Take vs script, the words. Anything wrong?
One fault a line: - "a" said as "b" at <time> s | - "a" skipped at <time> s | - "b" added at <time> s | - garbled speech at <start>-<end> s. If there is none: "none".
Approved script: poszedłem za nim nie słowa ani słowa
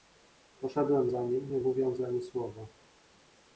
- "słowa" said as "mówiąc" at 1.6 s